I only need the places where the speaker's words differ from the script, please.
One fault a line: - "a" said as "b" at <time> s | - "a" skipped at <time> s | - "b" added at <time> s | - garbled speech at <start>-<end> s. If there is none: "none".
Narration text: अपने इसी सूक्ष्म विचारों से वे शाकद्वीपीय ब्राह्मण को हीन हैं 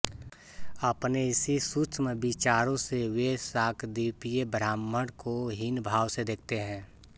- "भाव से देखते" added at 5.8 s